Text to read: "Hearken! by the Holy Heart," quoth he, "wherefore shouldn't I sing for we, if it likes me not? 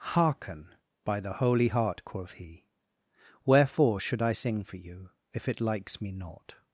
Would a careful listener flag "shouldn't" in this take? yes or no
yes